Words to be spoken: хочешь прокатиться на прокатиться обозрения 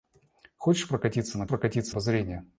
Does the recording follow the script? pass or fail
pass